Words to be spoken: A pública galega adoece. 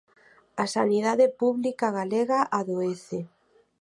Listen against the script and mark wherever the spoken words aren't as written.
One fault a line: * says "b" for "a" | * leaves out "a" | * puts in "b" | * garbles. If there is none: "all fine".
* puts in "sanidade"